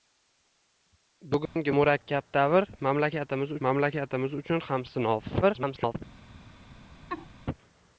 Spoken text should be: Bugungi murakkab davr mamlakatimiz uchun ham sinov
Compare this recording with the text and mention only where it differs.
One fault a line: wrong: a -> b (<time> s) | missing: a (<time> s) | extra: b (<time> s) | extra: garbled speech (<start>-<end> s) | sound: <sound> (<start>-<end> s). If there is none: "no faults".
sound: dropout (1.5-1.6 s)
extra: mamlakatimiz (3.7 s)
extra: garbled speech (5.4-6.0 s)
sound: laugh (7.1-7.3 s)